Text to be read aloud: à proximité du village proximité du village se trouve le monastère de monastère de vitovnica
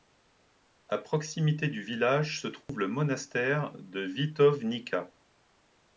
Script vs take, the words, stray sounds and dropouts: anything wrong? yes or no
yes